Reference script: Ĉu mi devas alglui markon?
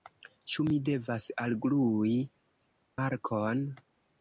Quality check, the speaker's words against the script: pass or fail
pass